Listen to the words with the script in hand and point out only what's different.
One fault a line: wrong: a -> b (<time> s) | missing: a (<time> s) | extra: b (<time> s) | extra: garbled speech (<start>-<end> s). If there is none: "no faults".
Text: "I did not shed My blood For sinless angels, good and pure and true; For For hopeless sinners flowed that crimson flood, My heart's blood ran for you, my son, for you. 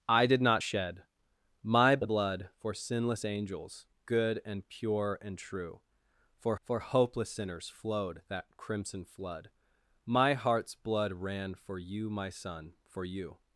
no faults